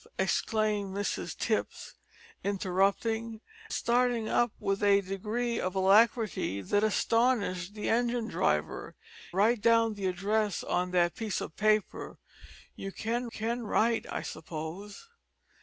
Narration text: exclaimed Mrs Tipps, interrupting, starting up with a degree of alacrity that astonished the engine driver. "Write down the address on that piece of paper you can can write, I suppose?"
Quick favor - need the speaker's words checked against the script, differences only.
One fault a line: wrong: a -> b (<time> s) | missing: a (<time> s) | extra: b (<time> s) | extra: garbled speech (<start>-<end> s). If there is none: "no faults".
no faults